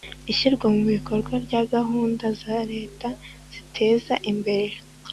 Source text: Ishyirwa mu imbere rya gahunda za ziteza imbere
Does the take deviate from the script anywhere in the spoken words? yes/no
yes